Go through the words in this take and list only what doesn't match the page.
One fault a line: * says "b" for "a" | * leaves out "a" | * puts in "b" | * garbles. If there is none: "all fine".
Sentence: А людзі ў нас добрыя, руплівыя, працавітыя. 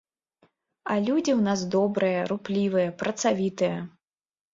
all fine